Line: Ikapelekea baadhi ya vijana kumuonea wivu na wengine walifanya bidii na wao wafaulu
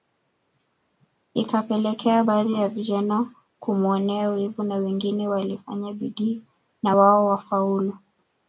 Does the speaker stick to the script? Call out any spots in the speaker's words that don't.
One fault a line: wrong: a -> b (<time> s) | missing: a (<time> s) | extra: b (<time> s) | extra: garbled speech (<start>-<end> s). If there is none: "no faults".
no faults